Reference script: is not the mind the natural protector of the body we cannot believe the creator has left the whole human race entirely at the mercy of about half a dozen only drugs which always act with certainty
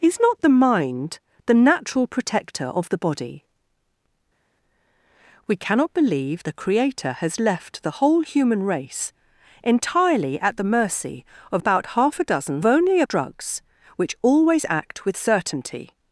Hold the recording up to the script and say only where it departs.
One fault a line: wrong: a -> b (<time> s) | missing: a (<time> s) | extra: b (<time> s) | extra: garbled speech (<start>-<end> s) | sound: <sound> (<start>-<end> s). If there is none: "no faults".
no faults